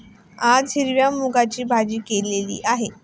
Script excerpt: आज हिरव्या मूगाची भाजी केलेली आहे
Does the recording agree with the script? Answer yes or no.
yes